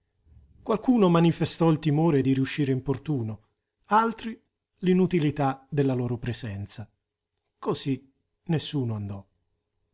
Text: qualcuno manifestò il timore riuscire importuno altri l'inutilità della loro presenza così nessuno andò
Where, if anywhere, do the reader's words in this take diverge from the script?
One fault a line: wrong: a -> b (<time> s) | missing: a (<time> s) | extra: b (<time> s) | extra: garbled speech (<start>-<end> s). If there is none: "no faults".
extra: di (2.2 s)